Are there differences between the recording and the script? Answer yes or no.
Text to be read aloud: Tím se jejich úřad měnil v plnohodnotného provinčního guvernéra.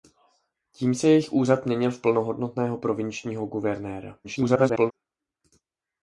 yes